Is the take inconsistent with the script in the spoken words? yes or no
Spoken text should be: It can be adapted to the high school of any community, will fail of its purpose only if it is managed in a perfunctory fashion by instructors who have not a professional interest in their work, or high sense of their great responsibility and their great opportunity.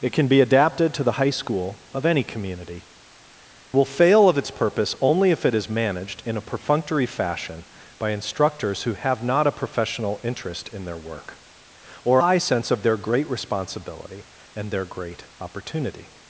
no